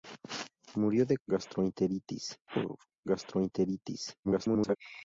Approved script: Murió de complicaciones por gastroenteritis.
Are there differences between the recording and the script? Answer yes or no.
yes